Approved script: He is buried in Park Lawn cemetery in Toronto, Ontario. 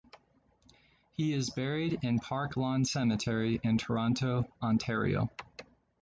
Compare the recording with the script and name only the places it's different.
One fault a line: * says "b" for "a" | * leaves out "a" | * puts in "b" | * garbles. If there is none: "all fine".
all fine